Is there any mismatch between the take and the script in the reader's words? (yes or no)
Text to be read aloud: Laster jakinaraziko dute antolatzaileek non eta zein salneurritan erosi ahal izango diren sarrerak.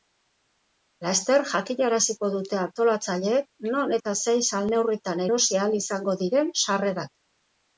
no